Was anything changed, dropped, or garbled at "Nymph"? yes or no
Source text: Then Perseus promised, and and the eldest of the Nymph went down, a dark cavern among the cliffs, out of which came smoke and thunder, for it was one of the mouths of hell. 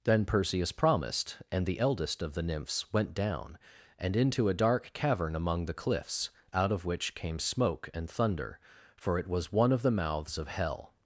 yes